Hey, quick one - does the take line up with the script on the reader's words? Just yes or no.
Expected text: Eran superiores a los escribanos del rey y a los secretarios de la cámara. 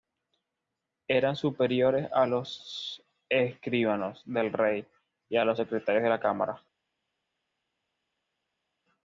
yes